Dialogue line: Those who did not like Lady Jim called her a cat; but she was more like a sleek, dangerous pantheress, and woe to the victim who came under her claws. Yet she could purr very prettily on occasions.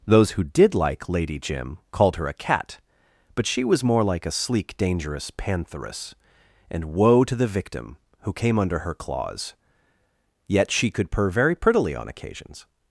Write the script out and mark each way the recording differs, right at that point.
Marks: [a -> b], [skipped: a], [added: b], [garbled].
Those who did [skipped: not] like Lady Jim called her a cat; but she was more like a sleek, dangerous pantheress, and woe to the victim who came under her claws. Yet she could purr very prettily on occasions.